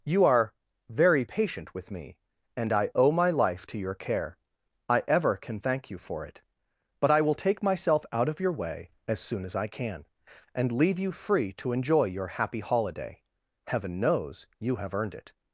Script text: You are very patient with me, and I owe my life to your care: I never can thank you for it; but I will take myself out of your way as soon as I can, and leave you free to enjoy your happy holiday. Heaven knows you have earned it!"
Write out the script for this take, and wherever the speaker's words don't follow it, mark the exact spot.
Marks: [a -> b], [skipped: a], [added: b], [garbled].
You are very patient with me, and I owe my life to your care: I [never -> ever] can thank you for it; but I will take myself out of your way as soon as I can, and leave you free to enjoy your happy holiday. Heaven knows you have earned it!"